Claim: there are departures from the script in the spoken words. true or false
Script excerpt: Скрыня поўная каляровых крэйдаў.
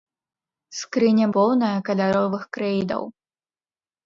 false